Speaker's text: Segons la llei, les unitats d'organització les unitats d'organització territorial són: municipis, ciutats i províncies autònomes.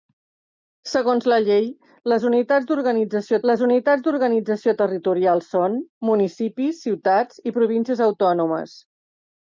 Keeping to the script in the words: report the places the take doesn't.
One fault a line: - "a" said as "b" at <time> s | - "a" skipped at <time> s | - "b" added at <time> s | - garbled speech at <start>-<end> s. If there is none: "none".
none